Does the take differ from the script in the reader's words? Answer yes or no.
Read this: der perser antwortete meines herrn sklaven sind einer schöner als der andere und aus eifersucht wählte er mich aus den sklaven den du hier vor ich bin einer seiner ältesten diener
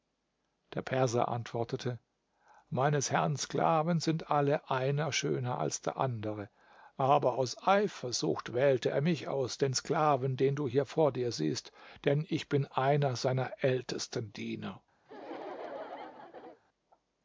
yes